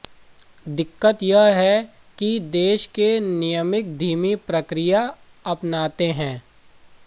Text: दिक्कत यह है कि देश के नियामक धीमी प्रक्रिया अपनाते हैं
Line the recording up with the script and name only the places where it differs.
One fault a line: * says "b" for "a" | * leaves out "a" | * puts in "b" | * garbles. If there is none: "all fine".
all fine